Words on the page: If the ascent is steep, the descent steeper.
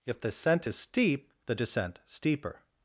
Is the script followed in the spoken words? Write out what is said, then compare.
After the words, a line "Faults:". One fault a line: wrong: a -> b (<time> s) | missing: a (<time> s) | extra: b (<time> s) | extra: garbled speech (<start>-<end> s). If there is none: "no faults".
If the ascent is steep, the descent steeper.
Faults:
no faults